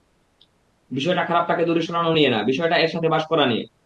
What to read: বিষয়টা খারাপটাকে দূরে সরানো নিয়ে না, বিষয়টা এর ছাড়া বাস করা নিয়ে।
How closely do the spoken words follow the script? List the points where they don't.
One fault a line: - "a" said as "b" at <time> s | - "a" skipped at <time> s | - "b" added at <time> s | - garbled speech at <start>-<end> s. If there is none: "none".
- "ছাড়া" said as "সাথে" at 2.9 s